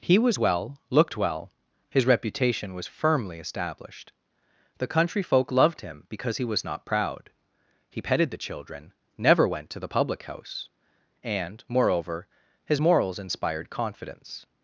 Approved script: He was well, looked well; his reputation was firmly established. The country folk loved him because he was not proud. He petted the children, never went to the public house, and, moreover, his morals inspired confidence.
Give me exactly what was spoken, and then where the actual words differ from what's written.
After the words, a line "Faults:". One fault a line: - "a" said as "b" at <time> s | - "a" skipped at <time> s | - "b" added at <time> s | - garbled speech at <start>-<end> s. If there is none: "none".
He was well, looked well; his reputation was firmly established. The country folk loved him because he was not proud. He petted the children, never went to the public house, and, moreover, his morals inspired confidence.
Faults:
none